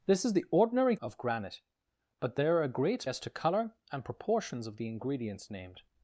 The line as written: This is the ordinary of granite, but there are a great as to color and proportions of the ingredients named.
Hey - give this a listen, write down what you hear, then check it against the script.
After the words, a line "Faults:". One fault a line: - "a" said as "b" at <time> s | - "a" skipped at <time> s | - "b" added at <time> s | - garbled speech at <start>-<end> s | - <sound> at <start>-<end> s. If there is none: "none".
This is the ordinary of granite, but there are a great as to color and proportions of the ingredients named.
Faults:
none